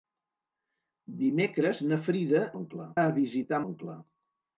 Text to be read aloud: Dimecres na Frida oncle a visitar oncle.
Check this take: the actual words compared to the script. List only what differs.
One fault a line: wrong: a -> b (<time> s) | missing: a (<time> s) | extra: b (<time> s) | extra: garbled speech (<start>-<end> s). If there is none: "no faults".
no faults